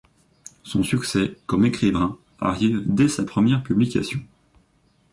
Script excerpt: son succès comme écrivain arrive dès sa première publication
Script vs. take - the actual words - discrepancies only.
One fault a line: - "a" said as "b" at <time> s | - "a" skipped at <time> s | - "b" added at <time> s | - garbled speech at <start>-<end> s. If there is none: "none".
none